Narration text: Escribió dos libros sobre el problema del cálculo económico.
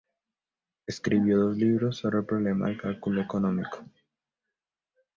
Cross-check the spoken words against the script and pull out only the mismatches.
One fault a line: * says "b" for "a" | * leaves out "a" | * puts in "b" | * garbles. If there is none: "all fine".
all fine